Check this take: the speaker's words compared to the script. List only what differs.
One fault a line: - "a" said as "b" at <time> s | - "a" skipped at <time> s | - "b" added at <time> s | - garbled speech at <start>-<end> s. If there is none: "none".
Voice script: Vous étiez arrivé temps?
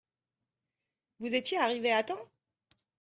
- "à" added at 1.9 s